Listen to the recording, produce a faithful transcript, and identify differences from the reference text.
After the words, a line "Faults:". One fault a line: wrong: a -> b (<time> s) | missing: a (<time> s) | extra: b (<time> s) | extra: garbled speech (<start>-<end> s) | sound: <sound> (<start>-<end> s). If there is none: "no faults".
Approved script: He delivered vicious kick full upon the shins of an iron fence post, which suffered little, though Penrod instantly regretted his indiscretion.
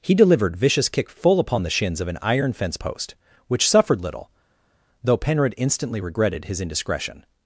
He delivered vicious kick full upon the shins of an iron fence post, which suffered little, though Penrod instantly regretted his indiscretion.
Faults:
no faults